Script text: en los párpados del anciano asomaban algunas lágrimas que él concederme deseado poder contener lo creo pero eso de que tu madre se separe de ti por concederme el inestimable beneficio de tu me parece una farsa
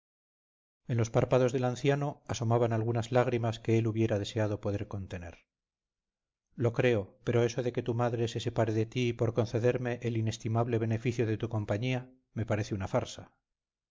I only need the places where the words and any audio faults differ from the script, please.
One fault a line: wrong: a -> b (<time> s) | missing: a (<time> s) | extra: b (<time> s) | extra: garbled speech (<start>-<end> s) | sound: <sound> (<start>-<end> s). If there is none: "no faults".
wrong: concederme -> hubiera (3.9 s)
extra: compañía (11.5 s)